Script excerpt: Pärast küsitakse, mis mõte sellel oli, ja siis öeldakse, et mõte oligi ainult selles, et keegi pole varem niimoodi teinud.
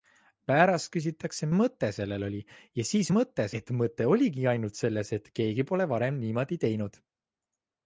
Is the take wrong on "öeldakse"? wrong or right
wrong